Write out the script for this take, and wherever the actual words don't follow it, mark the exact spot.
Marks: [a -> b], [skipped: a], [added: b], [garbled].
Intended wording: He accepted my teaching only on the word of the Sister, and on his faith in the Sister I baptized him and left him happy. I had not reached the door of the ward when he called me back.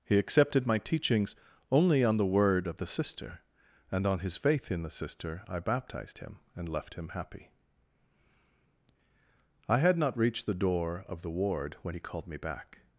He accepted my [teaching -> teachings] only on the word of the Sister, and on his faith in the Sister I baptized him and left him happy. I had not reached the door of the ward when he called me back.